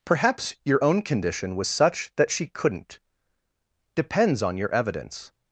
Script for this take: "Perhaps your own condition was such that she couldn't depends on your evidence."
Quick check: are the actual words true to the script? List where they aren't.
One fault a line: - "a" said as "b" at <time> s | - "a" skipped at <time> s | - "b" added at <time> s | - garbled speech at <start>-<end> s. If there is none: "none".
none